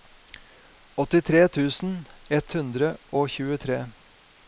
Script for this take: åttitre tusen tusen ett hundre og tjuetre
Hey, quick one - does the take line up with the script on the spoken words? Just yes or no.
no